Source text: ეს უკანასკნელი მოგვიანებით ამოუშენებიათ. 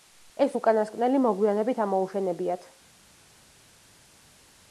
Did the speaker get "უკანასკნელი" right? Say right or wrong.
right